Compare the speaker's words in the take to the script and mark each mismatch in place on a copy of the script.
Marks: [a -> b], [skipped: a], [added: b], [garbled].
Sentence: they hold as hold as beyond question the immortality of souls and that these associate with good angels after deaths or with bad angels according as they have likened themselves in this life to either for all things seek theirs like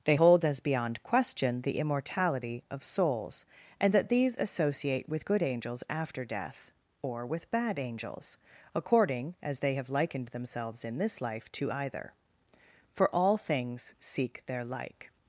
they hold as [skipped: hold as] beyond question the immortality of souls and that these associate with good angels after [deaths -> death] or with bad angels according as they have likened themselves in this life to either for all things seek [theirs -> their] like